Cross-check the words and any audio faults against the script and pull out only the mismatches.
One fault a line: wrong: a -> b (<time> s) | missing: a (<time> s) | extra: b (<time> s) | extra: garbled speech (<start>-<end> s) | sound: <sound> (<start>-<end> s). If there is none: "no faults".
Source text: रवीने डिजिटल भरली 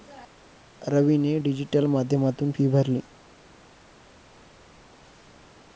extra: माध्यमातून फी (1.9 s)